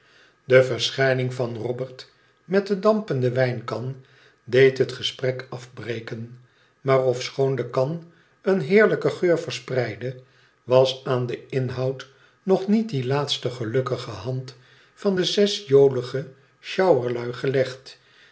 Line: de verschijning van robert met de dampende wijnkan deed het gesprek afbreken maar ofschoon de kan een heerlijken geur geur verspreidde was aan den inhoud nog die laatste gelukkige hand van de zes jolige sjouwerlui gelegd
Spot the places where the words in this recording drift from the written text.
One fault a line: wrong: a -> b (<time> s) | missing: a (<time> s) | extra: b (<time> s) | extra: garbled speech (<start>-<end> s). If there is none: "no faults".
missing: geur (9.4 s)
extra: niet (12.7 s)